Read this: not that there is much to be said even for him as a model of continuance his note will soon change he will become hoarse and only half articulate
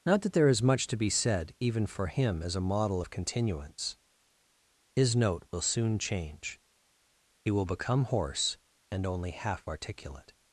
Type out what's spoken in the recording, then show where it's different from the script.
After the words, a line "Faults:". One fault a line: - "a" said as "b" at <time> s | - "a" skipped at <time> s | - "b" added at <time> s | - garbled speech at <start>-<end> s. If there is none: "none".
not that there is much to be said even for him as a model of continuance his note will soon change he will become hoarse and only half articulate
Faults:
none